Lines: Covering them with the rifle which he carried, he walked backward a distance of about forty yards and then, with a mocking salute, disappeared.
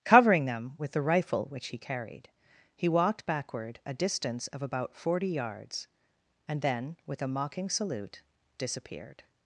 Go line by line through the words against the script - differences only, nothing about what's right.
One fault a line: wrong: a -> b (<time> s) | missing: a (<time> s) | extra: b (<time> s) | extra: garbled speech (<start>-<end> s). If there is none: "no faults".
no faults